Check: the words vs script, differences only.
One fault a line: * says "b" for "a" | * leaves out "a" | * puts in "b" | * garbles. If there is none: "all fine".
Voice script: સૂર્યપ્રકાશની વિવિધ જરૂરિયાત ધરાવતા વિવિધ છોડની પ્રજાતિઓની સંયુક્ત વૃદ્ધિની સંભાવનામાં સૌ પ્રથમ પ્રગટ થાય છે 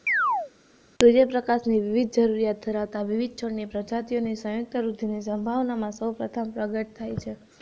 all fine